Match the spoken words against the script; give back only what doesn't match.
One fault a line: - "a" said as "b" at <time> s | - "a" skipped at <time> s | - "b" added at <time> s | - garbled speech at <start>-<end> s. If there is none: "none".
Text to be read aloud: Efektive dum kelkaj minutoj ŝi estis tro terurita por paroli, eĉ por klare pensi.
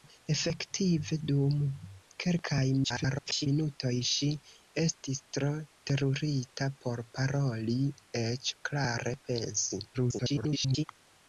- garbled speech at 2.8-3.5 s
- "por" skipped at 8.6 s
- garbled speech at 9.9-10.8 s